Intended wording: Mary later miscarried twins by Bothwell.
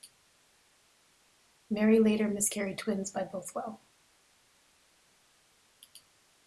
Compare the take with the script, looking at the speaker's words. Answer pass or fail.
pass